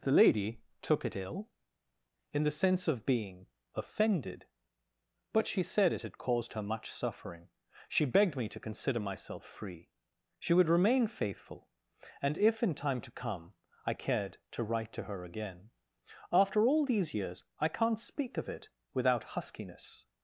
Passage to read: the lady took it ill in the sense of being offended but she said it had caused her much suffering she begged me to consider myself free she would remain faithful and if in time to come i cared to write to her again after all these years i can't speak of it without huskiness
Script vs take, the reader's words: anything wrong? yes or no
no